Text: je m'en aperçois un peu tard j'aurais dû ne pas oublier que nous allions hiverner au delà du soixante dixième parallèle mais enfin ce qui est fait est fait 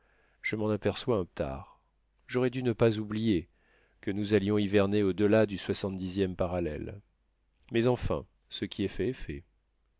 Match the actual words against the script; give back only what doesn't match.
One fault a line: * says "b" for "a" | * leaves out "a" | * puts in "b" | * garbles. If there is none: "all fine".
* leaves out "peu"